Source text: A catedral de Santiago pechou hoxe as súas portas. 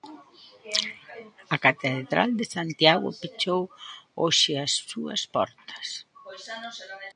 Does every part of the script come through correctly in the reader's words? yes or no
yes